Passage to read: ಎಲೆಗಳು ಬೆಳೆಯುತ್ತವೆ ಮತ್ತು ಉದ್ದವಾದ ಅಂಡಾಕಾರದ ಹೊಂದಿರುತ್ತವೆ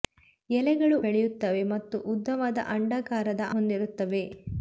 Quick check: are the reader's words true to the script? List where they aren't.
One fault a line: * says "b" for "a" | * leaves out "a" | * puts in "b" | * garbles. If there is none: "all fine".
all fine